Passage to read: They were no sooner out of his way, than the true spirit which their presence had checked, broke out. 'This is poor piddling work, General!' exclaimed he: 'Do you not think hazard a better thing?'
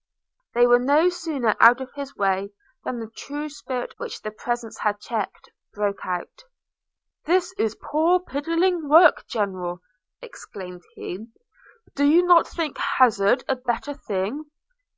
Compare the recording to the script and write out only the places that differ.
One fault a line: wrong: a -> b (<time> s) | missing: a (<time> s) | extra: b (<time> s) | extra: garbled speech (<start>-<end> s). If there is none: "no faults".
no faults